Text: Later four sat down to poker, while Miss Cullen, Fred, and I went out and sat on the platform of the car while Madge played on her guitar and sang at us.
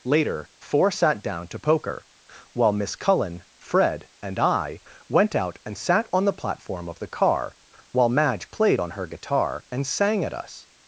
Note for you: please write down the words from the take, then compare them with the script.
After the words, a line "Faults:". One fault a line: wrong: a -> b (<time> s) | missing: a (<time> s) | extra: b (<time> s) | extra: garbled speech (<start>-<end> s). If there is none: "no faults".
Later four sat down to poker, while Miss Cullen, Fred, and I went out and sat on the platform of the car while Madge played on her guitar and sang at us.
Faults:
no faults